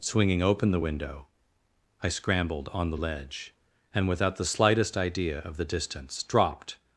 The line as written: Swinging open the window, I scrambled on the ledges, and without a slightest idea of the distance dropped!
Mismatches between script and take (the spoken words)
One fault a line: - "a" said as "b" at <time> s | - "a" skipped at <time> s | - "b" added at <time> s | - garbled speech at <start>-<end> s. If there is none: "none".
- "ledges" said as "ledge" at 3.0 s
- "a" said as "the" at 4.4 s